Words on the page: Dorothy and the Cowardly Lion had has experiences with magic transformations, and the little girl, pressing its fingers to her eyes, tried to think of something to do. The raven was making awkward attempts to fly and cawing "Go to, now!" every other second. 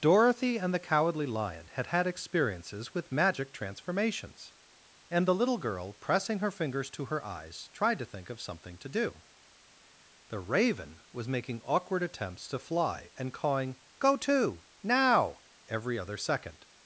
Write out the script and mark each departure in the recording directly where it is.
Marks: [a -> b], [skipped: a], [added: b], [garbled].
Dorothy and the Cowardly Lion had [has -> had] experiences with magic transformations, and the little girl, pressing [its -> her] fingers to her eyes, tried to think of something to do. The raven was making awkward attempts to fly and cawing "Go to, now!" every other second.